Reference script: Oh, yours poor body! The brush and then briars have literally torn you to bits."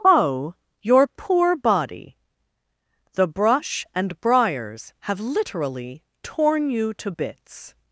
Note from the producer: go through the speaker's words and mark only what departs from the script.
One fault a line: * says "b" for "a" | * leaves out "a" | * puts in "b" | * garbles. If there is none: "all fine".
* says "your" for "yours"
* leaves out "then"